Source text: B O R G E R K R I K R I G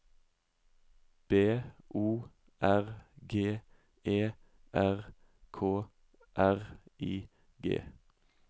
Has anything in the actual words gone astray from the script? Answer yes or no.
yes